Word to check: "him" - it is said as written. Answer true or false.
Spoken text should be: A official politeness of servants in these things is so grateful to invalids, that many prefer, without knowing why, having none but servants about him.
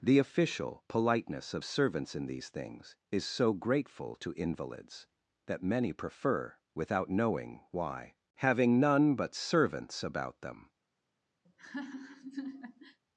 false